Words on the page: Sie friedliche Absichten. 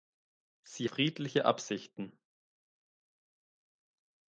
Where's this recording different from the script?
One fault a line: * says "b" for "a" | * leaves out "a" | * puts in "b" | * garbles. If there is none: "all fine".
all fine